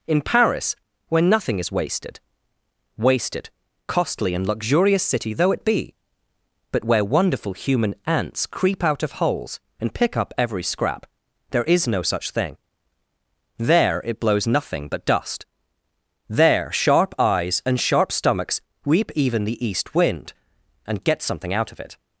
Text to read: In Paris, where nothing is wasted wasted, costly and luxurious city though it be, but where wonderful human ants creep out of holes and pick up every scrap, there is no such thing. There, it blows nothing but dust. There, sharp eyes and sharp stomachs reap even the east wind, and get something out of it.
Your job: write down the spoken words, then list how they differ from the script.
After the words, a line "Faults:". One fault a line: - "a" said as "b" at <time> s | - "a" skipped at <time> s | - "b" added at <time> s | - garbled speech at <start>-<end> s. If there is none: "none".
In Paris, where nothing is wasted wasted, costly and luxurious city though it be, but where wonderful human ants creep out of holes and pick up every scrap, there is no such thing. There, it blows nothing but dust. There, sharp eyes and sharp stomachs reap even the east wind, and get something out of it.
Faults:
none